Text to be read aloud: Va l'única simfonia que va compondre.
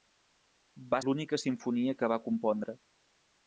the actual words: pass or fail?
pass